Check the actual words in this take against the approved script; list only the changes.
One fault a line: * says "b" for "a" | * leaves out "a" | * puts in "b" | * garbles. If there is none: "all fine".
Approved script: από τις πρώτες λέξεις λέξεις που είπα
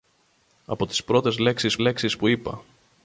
all fine